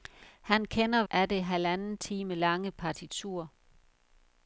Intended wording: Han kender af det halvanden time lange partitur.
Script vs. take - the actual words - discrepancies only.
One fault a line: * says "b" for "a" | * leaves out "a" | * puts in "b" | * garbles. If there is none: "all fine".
all fine